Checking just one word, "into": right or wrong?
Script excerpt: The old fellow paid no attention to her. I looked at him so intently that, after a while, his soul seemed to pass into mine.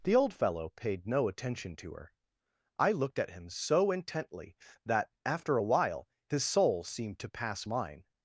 wrong